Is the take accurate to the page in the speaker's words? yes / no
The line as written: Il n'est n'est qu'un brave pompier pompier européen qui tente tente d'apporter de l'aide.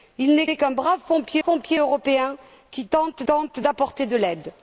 yes